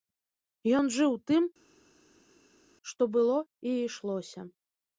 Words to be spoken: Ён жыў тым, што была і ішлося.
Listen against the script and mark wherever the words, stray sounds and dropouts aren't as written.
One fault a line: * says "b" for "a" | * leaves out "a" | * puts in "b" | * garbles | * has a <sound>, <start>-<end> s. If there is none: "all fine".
* says "было" for "была"